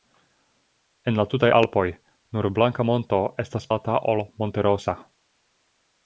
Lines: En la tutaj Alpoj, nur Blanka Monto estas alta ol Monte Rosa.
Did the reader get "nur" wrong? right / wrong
right